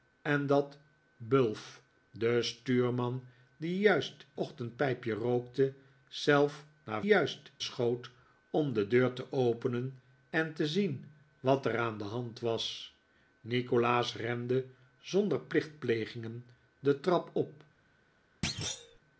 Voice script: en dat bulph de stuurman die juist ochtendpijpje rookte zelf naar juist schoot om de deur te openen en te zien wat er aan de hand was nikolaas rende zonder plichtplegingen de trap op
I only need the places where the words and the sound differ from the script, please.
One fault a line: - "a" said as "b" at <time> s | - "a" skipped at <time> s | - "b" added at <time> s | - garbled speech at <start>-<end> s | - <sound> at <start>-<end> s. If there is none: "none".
- thud at 18.4-19.0 s